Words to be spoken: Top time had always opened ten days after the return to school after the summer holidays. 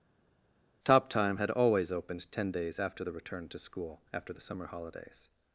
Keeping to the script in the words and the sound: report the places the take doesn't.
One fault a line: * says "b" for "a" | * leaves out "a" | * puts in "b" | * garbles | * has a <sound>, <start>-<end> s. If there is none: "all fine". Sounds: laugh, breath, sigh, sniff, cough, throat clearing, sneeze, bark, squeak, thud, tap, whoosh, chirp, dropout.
all fine